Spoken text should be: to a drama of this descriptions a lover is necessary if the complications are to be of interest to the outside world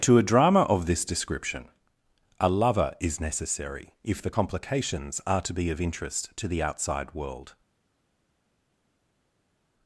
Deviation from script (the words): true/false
true